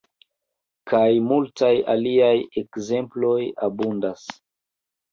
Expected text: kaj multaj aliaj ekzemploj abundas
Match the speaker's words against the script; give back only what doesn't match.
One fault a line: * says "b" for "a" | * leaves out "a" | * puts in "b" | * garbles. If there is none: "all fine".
all fine